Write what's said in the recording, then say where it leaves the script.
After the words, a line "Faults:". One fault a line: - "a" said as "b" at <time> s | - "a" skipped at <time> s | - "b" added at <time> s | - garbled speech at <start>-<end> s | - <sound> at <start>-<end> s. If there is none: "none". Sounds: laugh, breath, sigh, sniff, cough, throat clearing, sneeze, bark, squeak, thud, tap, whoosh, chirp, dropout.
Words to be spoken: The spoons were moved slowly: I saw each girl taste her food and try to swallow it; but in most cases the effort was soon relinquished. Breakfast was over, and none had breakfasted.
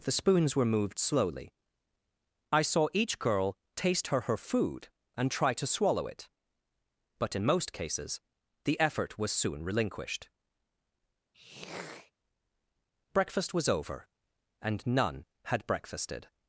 The spoons were moved slowly: I saw each girl taste her her food and try to swallow it; but in most cases the effort was soon relinquished. Breakfast was over, and none had breakfasted.
Faults:
- "her" added at 4.2 s
- throat clearing at 11.3-12.1 s